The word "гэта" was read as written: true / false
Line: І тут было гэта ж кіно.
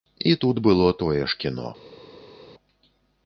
false